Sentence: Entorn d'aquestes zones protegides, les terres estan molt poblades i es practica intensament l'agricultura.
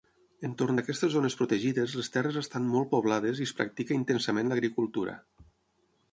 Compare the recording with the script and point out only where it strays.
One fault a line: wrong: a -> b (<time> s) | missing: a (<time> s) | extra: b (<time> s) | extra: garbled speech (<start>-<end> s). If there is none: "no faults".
no faults